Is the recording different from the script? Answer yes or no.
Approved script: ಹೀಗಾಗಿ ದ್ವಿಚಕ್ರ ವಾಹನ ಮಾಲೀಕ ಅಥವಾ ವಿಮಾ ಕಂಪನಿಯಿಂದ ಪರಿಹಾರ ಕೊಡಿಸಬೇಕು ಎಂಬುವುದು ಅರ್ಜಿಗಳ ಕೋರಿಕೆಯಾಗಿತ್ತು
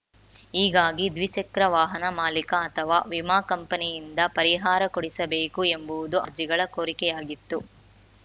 no